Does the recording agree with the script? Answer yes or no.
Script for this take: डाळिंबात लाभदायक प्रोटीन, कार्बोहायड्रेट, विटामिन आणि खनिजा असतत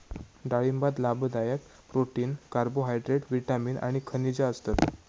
yes